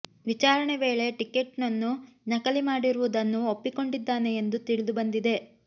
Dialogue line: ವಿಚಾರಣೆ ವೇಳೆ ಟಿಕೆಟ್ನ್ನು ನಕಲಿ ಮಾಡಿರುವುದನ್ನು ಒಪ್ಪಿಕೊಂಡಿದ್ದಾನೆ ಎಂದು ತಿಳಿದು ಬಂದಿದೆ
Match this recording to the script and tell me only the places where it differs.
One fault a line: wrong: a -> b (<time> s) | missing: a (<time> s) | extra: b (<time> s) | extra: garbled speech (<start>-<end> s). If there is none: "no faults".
no faults